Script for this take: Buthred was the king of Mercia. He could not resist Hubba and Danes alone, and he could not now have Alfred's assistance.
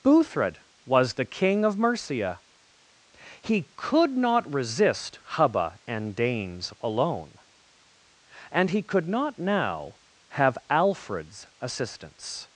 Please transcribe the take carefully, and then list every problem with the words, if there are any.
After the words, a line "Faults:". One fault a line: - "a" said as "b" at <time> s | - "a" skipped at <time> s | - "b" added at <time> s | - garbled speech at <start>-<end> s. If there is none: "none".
Buthred was the king of Mercia. He could not resist Hubba and Danes alone, and he could not now have Alfred's assistance.
Faults:
none